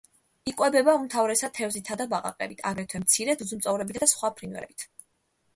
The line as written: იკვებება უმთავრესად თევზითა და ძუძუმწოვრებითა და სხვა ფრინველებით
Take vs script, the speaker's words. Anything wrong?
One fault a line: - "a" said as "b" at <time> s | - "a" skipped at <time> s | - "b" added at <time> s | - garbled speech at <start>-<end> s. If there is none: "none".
- "ბაყაყებით აგრეთვე მცირე" added at 2.1 s